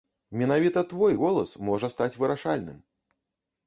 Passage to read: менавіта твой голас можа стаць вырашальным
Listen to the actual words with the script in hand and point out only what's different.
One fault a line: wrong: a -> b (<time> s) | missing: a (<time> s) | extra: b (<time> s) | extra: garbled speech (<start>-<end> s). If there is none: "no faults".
no faults